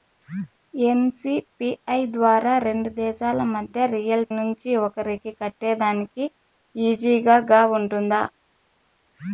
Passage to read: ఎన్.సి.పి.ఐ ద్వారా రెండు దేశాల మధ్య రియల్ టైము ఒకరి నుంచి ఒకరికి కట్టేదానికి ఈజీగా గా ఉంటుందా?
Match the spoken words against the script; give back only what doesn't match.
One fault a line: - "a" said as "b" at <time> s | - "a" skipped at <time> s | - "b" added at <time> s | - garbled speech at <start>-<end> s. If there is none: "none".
- "టైము ఒకరి" skipped at 4.2 s